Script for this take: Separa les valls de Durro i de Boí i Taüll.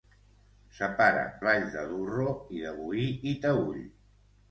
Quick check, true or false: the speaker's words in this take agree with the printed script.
false